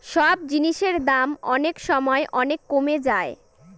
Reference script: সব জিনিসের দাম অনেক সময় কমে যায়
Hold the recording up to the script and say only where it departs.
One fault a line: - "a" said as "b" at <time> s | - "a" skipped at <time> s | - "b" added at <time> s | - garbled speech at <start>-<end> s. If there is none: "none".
- "অনেক" added at 2.3 s